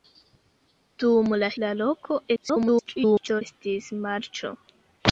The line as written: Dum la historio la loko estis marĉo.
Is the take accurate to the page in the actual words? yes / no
no